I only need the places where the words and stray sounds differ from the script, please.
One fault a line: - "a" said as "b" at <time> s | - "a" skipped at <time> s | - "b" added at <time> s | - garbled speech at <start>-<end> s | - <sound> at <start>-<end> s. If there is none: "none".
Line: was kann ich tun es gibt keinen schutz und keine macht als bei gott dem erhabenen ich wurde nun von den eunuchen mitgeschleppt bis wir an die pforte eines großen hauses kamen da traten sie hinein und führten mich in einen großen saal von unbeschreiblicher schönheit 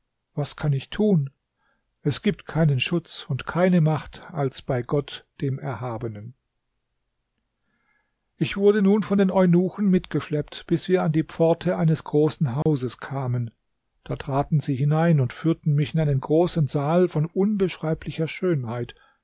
- dropout at 12.6-12.7 s